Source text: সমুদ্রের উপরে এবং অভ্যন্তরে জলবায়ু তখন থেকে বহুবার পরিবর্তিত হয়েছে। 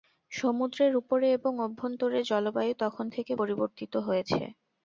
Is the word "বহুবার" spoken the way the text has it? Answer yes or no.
no